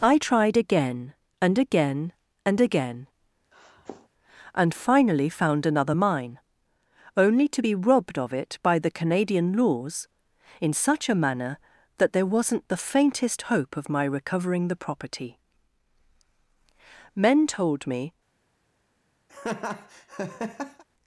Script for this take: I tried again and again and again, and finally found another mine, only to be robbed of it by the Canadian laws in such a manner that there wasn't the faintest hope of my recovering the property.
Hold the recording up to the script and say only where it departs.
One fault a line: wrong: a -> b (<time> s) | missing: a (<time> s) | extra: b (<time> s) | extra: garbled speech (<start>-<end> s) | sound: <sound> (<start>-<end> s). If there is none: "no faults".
sound: sniff (3.5-4.1 s)
extra: Men told me (17.1 s)
sound: laugh (19.3-20.8 s)